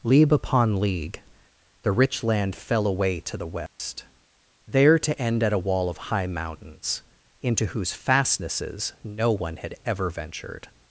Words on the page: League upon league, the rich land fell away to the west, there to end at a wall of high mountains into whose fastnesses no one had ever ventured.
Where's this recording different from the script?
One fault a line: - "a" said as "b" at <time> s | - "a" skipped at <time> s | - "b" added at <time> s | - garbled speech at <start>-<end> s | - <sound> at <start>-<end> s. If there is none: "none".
- dropout at 3.7-3.8 s